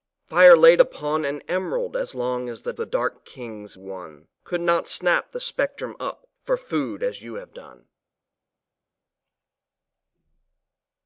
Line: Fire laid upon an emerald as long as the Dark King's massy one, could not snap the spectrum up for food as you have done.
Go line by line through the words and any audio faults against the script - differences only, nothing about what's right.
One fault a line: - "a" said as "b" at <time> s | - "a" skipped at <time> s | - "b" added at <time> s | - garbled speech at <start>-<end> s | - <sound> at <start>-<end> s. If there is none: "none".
- "the" added at 2.8 s
- "massy" skipped at 3.8 s